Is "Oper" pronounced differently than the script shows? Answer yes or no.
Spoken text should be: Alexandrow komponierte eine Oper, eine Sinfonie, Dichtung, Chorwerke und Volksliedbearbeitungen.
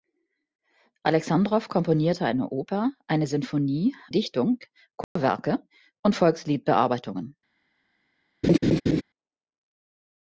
no